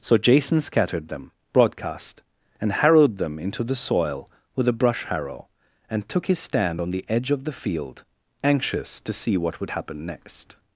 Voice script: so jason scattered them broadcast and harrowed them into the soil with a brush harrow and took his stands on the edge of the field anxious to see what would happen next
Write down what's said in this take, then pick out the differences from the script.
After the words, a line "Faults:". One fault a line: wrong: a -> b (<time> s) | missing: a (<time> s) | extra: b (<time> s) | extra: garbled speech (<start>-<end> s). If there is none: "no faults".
so jason scattered them broadcast and harrowed them into the soil with a brush harrow and took his stand on the edge of the field anxious to see what would happen next
Faults:
wrong: stands -> stand (6.4 s)